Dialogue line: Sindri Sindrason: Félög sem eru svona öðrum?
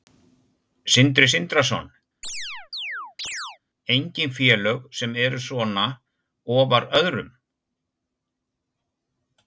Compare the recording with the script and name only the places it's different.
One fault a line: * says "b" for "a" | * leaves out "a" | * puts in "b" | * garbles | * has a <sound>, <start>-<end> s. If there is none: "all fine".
* has a chirp, 2.2-3.6 s
* puts in "Engin"
* puts in "ofar"